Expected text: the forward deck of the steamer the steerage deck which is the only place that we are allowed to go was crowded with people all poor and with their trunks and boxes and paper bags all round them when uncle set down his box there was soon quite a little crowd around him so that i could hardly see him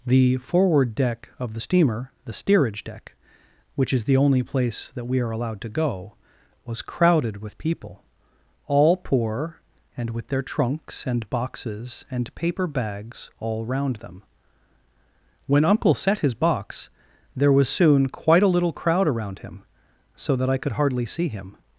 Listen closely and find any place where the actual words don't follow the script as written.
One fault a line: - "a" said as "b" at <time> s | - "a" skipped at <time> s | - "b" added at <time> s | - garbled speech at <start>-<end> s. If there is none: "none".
- "down" skipped at 16.2 s